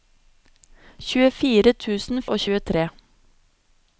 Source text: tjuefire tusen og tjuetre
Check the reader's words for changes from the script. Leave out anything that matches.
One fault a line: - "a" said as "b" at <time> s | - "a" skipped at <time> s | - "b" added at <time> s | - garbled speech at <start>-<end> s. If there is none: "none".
none